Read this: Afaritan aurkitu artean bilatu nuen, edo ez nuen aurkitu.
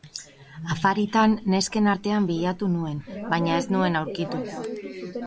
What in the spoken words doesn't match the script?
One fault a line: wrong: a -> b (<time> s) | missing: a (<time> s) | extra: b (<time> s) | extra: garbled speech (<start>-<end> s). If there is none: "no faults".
wrong: aurkitu -> nesken (1.5 s)
wrong: edo -> baina (3.3 s)